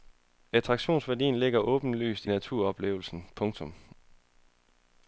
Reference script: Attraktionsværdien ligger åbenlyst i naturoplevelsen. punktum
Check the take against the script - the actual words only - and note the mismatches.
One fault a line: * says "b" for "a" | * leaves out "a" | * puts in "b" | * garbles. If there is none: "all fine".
* leaves out "i"